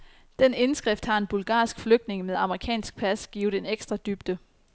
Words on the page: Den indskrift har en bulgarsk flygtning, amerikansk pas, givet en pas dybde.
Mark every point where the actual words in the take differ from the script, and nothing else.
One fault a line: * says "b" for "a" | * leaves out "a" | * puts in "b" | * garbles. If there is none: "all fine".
* puts in "med"
* says "ekstra" for "pas"